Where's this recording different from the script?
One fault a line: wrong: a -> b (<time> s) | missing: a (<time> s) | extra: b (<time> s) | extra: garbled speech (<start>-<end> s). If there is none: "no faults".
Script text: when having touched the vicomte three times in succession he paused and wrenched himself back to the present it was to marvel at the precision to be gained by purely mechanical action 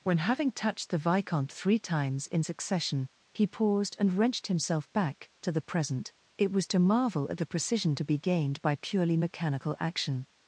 no faults